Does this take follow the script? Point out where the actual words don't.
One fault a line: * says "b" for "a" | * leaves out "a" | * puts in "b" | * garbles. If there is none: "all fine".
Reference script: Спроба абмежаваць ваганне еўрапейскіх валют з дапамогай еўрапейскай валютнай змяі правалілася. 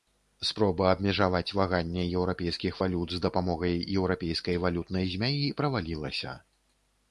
all fine